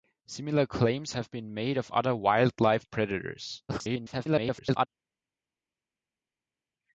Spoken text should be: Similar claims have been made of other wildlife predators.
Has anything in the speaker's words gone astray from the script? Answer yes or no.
yes